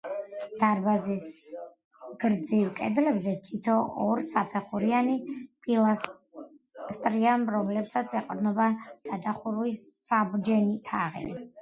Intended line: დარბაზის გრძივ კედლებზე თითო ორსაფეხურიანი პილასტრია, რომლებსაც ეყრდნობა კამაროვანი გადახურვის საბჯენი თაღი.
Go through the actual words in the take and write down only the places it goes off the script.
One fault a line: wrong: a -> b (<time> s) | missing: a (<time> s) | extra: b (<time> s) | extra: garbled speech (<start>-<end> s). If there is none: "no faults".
missing: კამაროვანი (8.7 s)